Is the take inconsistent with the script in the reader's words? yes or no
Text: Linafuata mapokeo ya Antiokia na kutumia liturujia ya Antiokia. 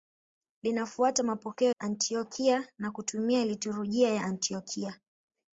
yes